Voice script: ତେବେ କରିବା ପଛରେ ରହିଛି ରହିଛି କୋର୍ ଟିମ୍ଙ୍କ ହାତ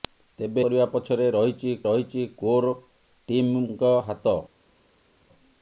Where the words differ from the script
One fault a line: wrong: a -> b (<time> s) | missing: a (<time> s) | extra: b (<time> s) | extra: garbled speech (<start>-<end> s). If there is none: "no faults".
no faults